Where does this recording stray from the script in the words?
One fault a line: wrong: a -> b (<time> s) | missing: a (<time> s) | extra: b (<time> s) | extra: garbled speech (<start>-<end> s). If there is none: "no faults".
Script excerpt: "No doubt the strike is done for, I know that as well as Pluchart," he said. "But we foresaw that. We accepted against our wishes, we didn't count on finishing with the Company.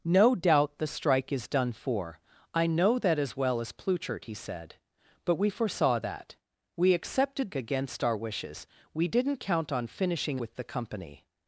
no faults